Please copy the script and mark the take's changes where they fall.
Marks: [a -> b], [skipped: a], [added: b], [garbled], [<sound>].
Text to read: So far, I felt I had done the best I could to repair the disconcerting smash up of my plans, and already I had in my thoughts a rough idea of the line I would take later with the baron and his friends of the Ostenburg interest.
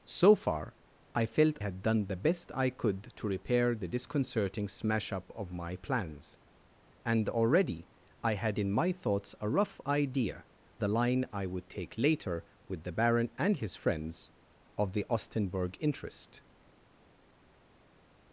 So far, I felt [skipped: I] had done the best I could to repair the disconcerting smash up of my plans, and already I had in my thoughts a rough idea [skipped: of] the line I would take later with the baron and his friends of the Ostenburg interest.